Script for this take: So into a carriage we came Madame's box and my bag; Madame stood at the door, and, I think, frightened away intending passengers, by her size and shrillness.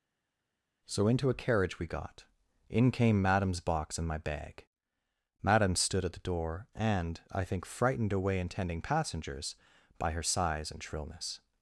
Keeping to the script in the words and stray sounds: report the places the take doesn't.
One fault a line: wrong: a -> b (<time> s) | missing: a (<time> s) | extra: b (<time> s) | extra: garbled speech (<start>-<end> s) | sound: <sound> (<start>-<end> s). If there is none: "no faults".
extra: got in (1.9 s)